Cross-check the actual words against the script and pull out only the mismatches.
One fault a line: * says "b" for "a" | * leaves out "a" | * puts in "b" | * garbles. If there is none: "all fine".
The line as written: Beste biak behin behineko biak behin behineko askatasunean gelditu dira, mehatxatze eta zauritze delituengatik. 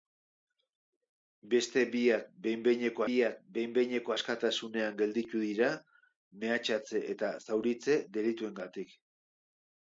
all fine